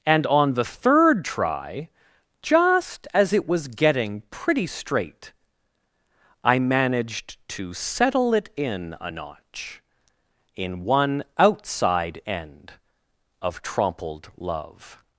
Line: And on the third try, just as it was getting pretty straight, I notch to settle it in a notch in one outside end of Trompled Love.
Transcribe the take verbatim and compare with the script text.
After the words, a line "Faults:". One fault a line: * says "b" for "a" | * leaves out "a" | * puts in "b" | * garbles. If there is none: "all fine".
And on the third try, just as it was getting pretty straight, I managed to settle it in a notch in one outside end of Trompled Love.
Faults:
* says "managed" for "notch"